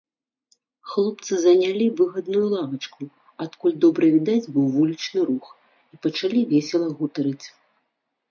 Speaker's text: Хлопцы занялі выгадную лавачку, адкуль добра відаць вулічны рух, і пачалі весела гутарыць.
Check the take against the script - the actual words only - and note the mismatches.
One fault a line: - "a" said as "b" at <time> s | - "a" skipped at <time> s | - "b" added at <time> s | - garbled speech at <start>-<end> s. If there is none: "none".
- "быў" added at 4.5 s